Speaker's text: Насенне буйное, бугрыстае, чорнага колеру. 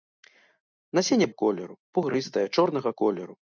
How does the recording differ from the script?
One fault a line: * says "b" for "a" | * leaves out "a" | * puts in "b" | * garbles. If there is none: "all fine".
* says "колеру" for "буйное"